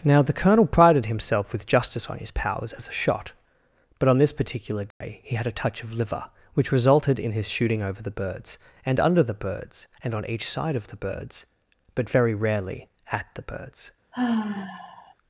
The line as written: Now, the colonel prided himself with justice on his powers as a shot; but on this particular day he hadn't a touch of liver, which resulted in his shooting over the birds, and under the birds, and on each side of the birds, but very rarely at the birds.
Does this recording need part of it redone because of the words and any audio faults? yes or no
yes